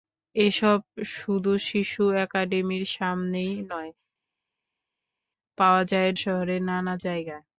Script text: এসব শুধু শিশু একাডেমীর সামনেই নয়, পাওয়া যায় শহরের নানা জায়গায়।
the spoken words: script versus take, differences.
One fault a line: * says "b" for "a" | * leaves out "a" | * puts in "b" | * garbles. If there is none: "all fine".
all fine